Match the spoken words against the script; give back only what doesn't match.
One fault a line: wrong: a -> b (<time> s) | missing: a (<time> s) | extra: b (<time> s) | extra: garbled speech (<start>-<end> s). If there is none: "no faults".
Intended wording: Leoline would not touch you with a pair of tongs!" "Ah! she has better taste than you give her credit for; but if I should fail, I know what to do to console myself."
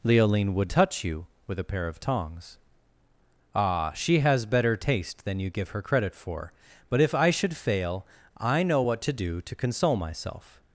missing: not (0.7 s)